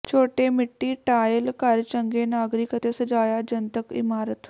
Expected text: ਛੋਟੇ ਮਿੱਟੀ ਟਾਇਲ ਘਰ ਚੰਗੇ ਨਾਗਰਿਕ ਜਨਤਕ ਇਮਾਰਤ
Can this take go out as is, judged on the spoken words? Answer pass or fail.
fail